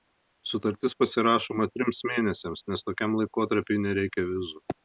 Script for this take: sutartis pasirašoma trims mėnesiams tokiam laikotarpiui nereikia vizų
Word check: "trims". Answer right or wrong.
right